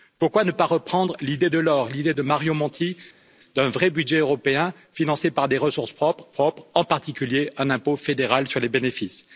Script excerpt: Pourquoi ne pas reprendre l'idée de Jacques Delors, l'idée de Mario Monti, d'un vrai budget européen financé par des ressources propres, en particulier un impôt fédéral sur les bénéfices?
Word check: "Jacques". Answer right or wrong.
wrong